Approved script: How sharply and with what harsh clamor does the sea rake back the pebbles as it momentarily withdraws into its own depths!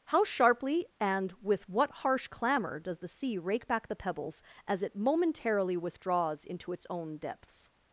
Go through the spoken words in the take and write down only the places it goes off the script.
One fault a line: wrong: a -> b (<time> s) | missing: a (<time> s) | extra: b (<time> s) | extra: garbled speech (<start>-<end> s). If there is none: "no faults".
no faults